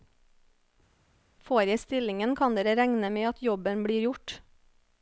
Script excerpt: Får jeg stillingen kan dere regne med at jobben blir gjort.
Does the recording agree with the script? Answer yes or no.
yes